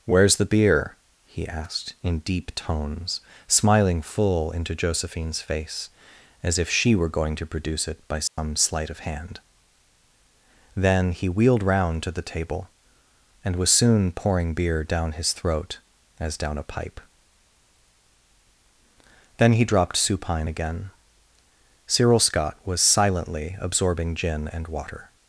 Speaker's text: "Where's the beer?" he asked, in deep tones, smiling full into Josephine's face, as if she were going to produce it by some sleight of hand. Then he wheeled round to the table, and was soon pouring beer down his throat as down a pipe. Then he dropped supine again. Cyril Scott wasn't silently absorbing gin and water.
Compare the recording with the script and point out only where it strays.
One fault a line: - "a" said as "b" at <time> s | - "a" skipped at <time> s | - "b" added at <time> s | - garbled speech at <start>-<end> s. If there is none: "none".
- "wasn't" said as "was" at 22.7 s